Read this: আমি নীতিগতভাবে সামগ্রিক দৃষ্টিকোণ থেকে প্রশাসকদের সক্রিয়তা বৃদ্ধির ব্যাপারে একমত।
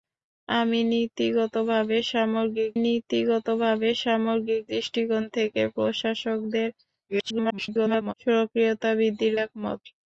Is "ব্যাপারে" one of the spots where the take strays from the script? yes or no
yes